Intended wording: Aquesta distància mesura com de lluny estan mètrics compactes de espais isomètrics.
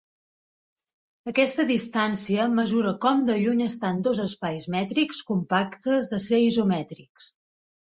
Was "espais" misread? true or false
true